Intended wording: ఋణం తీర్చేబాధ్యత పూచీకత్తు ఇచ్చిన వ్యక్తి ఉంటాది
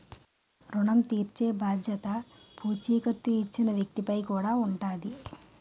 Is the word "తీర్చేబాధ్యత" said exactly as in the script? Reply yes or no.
yes